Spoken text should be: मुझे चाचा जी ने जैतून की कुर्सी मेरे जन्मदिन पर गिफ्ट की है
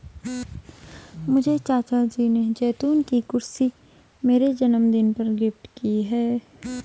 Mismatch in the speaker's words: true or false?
false